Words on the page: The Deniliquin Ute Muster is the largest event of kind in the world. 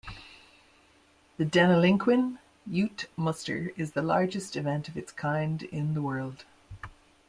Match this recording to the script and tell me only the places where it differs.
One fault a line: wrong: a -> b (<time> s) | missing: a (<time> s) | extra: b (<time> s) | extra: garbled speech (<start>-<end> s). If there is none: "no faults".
extra: its (5.0 s)